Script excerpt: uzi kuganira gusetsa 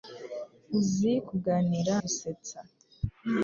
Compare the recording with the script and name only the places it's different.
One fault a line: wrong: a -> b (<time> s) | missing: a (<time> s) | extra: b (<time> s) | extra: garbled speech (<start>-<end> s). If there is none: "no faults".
no faults